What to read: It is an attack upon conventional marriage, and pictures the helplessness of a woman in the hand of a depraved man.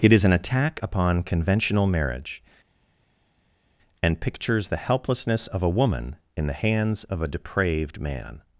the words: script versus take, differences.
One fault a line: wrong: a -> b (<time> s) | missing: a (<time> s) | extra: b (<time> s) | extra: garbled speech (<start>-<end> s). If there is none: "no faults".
wrong: hand -> hands (6.6 s)